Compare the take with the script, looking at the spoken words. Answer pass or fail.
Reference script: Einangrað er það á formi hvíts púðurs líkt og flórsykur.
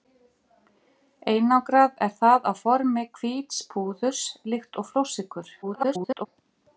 fail